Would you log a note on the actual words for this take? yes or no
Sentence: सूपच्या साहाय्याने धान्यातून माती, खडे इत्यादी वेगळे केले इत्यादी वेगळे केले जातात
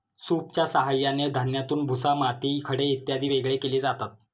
yes